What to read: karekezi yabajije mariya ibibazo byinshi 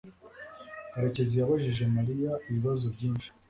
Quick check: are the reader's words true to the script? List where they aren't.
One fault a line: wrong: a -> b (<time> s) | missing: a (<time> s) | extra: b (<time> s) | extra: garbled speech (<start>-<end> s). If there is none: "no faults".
no faults